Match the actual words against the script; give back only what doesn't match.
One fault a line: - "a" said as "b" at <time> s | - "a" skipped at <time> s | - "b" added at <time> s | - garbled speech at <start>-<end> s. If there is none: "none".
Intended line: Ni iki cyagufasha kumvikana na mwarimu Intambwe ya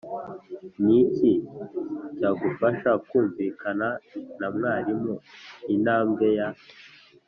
none